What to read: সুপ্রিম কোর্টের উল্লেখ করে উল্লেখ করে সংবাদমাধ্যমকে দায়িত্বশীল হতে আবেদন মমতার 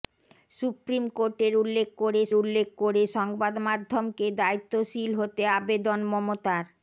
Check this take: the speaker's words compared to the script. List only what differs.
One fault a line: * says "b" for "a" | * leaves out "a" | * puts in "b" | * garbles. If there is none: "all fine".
all fine